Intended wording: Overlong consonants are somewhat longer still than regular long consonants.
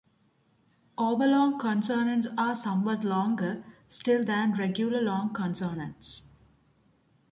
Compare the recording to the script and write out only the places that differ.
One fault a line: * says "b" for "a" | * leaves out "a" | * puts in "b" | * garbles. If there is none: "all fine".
all fine